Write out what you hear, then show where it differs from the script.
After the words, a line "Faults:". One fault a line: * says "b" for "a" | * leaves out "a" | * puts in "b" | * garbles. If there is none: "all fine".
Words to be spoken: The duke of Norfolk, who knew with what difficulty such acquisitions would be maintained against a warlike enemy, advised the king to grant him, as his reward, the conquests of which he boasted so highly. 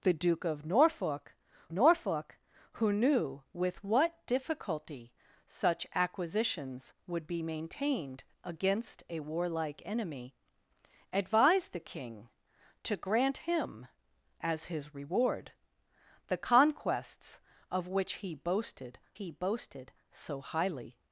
The duke of Norfolk Norfolk, who knew with what difficulty such acquisitions would be maintained against a warlike enemy, advised the king to grant him, as his reward, the conquests of which he boasted he boasted so highly.
Faults:
* puts in "Norfolk"
* puts in "he boasted"